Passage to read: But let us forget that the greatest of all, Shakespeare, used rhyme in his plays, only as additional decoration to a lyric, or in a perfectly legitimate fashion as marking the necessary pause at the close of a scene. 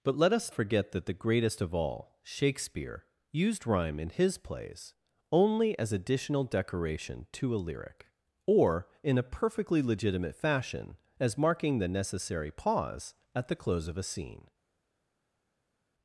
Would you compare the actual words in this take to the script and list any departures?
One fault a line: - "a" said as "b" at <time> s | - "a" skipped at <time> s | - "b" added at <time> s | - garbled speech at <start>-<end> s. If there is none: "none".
none